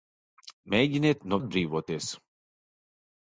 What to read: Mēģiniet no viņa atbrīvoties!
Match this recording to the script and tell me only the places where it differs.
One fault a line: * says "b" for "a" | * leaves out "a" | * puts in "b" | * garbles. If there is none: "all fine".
* leaves out "viņa"